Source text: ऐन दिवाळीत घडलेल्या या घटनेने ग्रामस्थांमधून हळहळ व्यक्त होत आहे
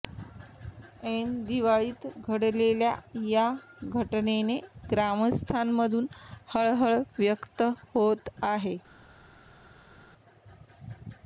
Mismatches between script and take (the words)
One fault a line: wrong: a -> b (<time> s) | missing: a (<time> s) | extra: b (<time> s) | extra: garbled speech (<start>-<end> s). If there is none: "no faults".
no faults